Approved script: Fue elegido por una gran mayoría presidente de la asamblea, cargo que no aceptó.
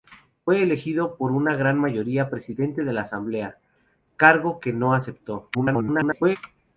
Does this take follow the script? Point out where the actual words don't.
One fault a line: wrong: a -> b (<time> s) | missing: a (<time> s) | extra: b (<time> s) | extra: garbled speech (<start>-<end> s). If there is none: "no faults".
extra: garbled speech (5.5-6.4 s)